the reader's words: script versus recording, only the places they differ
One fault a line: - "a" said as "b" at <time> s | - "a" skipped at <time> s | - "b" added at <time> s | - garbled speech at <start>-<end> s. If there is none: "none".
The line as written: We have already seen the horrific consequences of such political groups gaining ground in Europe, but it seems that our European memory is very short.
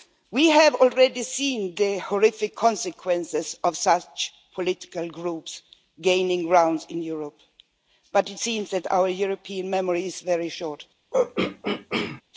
none